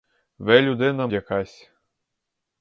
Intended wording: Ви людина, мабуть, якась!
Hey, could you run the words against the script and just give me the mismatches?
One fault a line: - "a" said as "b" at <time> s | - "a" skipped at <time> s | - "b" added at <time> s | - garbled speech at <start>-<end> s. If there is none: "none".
- "мабуть" skipped at 1.1 s